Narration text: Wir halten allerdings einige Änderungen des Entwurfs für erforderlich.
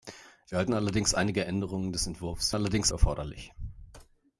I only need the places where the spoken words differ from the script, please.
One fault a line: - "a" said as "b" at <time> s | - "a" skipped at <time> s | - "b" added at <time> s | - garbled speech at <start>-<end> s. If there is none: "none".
- "für" said as "allerdings" at 2.5 s